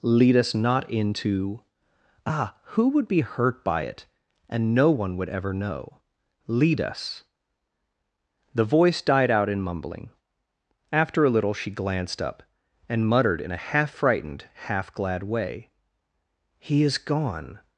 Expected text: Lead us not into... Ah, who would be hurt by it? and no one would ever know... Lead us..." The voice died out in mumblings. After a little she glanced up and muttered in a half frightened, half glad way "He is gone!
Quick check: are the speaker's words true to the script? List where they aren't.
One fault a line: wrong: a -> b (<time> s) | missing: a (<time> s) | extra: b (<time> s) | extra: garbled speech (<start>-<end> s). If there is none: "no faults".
wrong: mumblings -> mumbling (9.6 s)